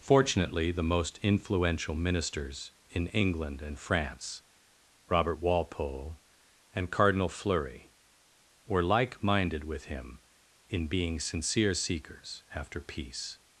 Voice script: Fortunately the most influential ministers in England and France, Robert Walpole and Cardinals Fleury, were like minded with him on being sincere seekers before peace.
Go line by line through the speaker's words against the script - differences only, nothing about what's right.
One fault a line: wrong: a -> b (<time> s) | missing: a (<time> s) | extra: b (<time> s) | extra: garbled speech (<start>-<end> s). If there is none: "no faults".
wrong: Cardinals -> Cardinal (6.9 s)
wrong: on -> in (10.7 s)
wrong: before -> after (12.5 s)